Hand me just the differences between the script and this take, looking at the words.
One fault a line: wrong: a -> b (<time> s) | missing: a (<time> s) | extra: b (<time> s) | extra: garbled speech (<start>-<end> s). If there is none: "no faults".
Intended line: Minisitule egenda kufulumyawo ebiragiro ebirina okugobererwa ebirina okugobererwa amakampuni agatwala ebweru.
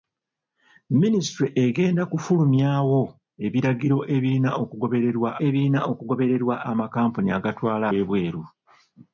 no faults